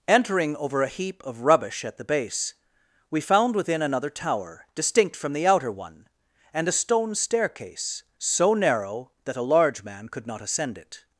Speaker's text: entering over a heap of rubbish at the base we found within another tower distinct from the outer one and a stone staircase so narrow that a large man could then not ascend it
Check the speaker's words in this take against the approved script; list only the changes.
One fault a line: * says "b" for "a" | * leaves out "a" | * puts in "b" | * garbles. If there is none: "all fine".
* leaves out "then"